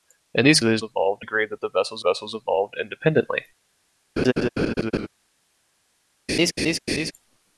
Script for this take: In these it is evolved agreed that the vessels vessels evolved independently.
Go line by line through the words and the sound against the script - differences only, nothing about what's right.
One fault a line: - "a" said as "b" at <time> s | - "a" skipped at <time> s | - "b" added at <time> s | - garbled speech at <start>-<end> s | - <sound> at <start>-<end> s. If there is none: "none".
- laugh at 4.2-5.1 s
- laugh at 6.3-7.1 s